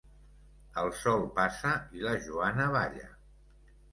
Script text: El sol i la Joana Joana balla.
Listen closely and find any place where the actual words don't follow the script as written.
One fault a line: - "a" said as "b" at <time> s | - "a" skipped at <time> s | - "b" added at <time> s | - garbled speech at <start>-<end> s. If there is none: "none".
- "passa" added at 1.4 s
- "Joana" skipped at 2.7 s